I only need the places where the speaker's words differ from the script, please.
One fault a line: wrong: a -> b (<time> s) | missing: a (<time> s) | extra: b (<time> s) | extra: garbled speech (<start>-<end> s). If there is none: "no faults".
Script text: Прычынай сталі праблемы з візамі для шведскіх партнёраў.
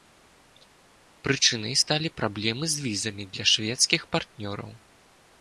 no faults